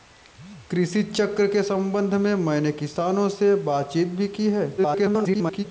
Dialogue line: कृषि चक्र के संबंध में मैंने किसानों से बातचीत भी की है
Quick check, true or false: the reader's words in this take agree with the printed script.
false